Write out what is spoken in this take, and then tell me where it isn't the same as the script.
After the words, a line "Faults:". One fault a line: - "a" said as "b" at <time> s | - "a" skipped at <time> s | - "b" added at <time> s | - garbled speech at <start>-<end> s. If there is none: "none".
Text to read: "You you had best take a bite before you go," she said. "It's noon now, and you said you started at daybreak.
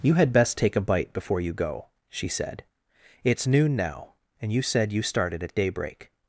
"You had best take a bite before you go," she said. "It's noon now, and you said you started at daybreak.
Faults:
- "you" skipped at 0.1 s